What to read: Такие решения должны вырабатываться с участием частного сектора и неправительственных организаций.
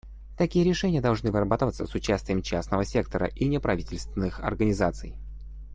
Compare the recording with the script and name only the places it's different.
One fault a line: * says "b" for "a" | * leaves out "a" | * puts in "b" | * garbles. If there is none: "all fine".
all fine